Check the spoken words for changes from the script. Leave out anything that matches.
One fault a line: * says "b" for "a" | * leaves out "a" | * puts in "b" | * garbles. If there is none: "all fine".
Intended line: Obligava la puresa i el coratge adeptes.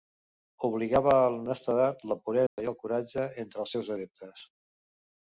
* puts in "a l'honestedat"
* puts in "entre els seus"